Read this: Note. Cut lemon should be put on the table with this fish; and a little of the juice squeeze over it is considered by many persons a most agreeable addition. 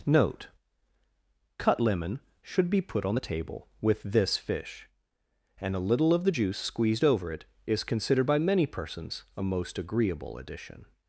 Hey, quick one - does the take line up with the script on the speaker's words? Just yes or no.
no